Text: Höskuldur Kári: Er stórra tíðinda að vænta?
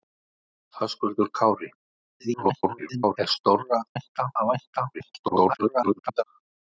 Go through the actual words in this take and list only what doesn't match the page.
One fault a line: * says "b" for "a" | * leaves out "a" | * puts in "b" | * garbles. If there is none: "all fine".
* garbles
* says "vænta" for "tíðinda"
* garbles